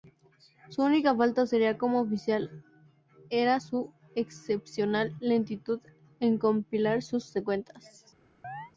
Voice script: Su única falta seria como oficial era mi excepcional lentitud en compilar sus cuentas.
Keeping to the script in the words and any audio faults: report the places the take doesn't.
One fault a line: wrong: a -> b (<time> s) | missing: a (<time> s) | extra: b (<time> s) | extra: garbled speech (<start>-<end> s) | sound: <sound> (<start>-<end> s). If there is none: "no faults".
wrong: mi -> su (3.6 s)
sound: chirp (8.4-8.7 s)